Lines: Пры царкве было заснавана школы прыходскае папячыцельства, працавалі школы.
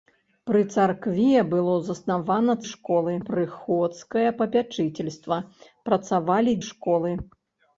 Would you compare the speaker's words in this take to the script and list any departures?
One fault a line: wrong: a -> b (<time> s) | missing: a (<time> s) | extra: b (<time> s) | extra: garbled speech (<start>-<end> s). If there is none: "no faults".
no faults